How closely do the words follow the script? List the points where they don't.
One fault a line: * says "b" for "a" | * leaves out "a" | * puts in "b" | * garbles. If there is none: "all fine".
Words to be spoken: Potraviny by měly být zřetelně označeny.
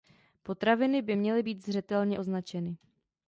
all fine